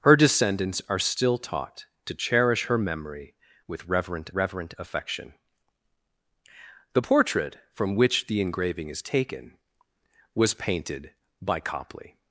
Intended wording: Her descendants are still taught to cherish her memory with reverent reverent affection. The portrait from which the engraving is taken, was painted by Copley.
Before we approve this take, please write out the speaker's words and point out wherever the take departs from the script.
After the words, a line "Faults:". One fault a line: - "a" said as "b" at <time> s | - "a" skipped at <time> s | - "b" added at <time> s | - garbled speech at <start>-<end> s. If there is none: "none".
Her descendants are still taught to cherish her memory with reverent reverent affection. The portrait from which the engraving is taken, was painted by Copley.
Faults:
none